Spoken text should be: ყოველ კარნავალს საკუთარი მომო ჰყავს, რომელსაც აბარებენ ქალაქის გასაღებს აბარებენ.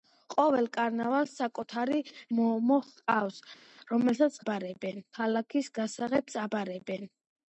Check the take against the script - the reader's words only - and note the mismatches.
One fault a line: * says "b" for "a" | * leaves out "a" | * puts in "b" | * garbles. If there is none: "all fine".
all fine